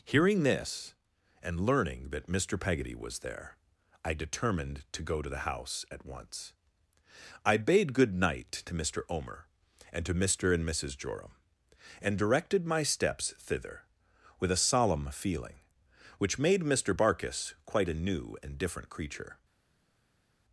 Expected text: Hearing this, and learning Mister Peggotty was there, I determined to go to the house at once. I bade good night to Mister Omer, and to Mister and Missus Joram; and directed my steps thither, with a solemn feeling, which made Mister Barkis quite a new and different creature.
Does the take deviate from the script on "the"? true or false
false